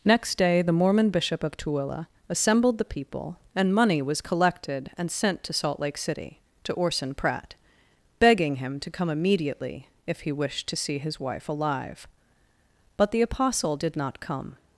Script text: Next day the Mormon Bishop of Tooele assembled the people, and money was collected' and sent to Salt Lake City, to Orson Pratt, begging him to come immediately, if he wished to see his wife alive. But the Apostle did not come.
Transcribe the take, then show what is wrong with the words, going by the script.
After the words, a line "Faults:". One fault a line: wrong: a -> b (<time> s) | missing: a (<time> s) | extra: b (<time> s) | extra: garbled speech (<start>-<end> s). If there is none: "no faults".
Next day the Mormon Bishop of Tooele assembled the people, and money was collected' and sent to Salt Lake City, to Orson Pratt, begging him to come immediately, if he wished to see his wife alive. But the Apostle did not come.
Faults:
no faults